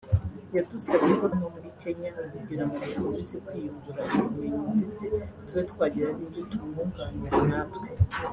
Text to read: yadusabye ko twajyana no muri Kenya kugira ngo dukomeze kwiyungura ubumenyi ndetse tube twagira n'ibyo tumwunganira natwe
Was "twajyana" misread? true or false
true